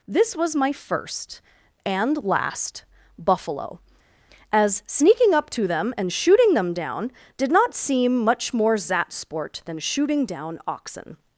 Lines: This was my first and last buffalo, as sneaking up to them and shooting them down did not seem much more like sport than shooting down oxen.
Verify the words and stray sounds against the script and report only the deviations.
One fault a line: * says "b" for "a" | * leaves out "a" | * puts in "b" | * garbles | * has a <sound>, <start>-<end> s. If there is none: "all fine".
* says "zat" for "like"